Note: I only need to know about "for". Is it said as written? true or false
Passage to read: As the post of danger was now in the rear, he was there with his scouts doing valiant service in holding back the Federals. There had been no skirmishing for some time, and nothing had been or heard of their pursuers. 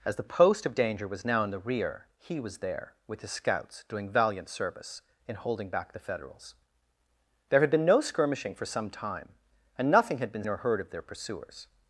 true